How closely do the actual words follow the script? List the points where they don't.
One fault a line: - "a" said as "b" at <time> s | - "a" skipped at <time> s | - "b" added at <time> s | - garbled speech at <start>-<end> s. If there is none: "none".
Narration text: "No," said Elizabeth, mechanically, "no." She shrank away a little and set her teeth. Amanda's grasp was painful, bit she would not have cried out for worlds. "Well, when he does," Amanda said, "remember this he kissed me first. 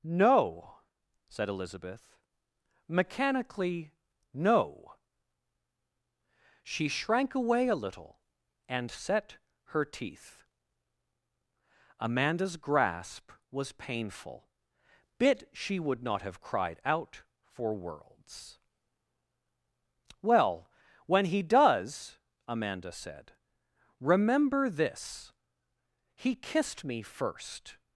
none